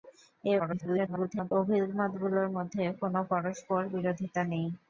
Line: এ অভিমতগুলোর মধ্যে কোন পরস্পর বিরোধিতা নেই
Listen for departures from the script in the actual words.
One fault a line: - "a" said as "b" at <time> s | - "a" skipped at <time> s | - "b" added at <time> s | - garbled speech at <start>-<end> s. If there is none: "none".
- garbled speech at 0.6-1.5 s